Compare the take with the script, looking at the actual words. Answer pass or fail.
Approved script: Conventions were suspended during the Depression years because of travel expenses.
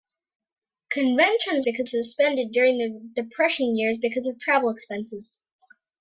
fail